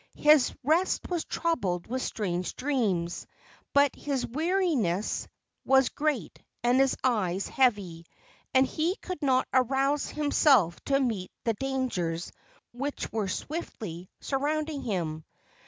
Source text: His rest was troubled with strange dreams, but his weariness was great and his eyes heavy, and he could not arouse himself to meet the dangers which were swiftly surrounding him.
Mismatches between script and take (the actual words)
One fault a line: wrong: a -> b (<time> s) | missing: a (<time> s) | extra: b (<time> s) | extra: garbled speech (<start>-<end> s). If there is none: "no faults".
no faults